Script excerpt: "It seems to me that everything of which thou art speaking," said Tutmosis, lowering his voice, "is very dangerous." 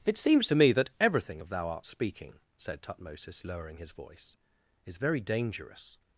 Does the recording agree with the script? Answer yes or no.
no